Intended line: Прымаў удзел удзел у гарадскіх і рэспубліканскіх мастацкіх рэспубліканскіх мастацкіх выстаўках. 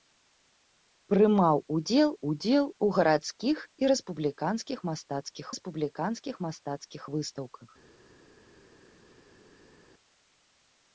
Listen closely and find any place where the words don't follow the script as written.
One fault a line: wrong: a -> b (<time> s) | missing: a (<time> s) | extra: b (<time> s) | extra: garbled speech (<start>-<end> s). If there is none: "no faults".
no faults